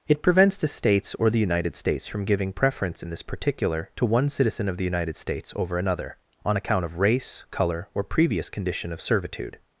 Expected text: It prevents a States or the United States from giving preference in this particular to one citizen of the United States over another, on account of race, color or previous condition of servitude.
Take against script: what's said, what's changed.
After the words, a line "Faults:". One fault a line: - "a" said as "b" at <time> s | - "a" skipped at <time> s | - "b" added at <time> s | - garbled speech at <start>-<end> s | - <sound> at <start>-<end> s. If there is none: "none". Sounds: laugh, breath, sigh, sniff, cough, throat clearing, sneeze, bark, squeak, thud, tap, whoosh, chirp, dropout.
It prevents the States or the United States from giving preference in this particular to one citizen of the United States over another, on account of race, color or previous condition of servitude.
Faults:
- "a" said as "the" at 0.6 s